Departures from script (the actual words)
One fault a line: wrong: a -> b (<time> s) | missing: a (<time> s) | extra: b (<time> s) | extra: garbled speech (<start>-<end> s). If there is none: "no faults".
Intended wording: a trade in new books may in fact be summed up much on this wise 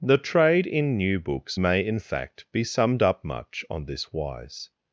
wrong: a -> the (0.0 s)